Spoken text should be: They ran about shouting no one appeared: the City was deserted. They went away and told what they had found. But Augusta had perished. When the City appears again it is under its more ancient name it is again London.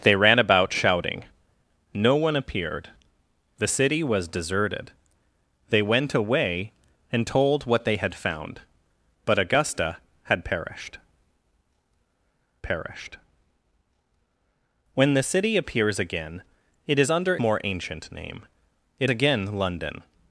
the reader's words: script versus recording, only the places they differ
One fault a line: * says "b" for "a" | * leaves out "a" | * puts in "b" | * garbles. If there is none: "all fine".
* puts in "perished"
* leaves out "its"
* leaves out "is"